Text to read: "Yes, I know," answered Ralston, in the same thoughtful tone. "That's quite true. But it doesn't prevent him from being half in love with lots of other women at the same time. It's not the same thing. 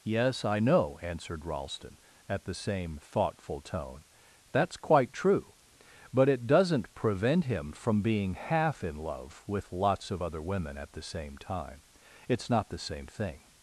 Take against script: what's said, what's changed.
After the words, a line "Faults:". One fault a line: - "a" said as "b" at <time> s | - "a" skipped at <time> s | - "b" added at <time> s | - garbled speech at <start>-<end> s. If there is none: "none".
"Yes, I know," answered Ralston, at the same thoughtful tone. "That's quite true. But it doesn't prevent him from being half in love with lots of other women at the same time. It's not the same thing.
Faults:
- "in" said as "at" at 2.3 s